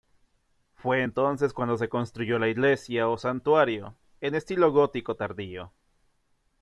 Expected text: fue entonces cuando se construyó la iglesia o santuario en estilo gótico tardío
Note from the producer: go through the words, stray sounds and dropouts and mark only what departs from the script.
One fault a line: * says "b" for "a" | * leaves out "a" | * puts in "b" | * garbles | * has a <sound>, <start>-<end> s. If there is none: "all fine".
all fine